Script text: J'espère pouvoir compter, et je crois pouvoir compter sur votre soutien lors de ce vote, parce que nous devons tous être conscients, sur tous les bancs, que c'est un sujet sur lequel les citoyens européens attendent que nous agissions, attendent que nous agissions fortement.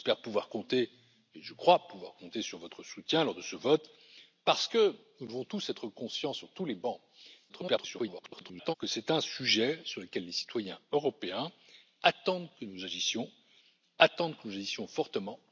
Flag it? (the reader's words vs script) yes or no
yes